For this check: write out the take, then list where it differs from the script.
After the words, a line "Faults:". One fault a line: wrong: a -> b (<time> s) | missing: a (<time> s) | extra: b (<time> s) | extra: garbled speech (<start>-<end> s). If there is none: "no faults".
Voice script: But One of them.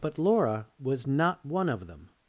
But Laura was not one of them.
Faults:
extra: Laura was not (0.2 s)